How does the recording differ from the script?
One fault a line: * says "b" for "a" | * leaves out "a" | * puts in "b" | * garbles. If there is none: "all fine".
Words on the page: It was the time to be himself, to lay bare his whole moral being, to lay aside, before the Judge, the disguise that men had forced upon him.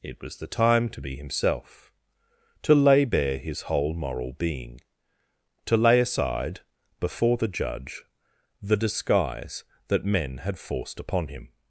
all fine